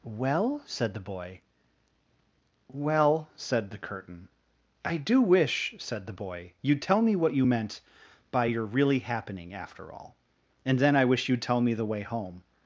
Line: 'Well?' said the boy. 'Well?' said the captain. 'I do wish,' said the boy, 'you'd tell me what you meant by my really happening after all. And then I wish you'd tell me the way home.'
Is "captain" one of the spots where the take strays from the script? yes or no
yes